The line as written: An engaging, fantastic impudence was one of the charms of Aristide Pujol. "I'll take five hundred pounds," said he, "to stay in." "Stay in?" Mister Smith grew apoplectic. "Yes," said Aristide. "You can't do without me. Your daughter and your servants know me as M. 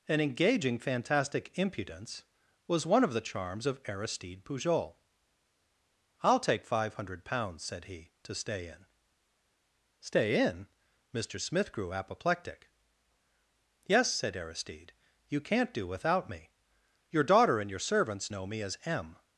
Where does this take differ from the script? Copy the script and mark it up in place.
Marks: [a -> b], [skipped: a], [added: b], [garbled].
An engaging, fantastic impudence was one of the charms of Aristide Pujol. "I'll take five hundred pounds," said he, "to stay in." "Stay in?" Mister Smith grew apoplectic. "Yes," said Aristide. "You can't do without me. Your daughter and your servants know me as M.